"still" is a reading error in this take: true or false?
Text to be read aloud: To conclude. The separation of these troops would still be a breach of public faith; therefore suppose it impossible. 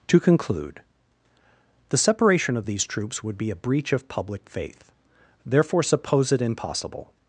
true